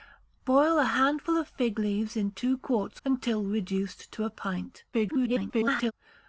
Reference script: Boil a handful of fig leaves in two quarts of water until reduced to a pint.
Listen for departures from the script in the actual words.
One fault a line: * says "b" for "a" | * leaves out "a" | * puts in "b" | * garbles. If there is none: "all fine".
* leaves out "of water"
* garbles